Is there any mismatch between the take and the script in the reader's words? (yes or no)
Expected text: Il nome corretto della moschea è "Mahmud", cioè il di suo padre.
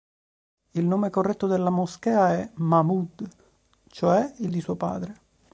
no